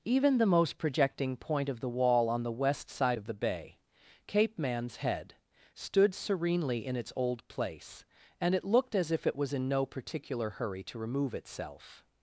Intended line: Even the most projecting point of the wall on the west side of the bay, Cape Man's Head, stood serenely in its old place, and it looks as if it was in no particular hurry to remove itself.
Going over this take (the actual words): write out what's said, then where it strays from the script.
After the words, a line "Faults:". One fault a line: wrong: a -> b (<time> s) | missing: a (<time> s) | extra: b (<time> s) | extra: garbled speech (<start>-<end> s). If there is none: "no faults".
Even the most projecting point of the wall on the west side of the bay, Cape Man's Head, stood serenely in its old place, and it looked as if it was in no particular hurry to remove itself.
Faults:
wrong: looks -> looked (8.6 s)